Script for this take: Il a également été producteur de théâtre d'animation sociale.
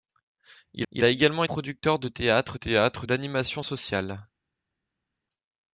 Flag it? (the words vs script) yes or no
yes